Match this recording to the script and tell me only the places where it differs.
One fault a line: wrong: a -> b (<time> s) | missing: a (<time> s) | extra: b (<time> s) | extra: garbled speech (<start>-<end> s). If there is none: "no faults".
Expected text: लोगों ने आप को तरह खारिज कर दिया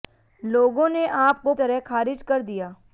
no faults